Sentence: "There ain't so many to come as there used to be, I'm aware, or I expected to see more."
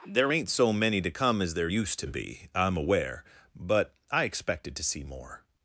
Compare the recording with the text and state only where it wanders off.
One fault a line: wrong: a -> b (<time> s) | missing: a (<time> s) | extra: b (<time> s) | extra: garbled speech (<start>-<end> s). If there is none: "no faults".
wrong: or -> but (3.6 s)